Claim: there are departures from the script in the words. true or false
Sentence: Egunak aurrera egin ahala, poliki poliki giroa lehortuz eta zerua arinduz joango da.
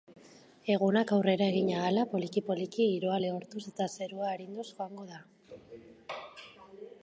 false